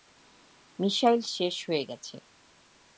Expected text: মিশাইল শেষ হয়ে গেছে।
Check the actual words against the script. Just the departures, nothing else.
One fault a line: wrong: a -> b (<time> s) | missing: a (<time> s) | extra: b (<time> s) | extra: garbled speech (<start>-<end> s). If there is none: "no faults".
no faults